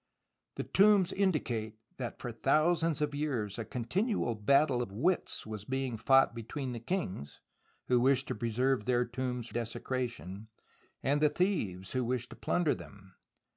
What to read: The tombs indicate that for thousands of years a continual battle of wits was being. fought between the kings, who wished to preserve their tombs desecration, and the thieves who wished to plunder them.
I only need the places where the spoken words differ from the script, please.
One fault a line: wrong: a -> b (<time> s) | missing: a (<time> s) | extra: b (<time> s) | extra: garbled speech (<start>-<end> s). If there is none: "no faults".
no faults